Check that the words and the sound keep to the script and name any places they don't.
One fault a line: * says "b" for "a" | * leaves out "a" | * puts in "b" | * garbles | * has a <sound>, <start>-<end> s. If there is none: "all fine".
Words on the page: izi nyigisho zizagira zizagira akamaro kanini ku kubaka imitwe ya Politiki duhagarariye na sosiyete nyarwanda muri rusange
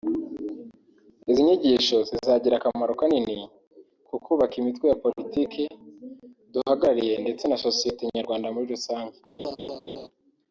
* leaves out "zizagira"
* puts in "ndetse"
* has a laugh, 9.4-10.1 s